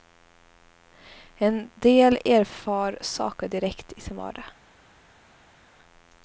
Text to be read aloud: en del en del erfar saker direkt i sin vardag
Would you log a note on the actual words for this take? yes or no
yes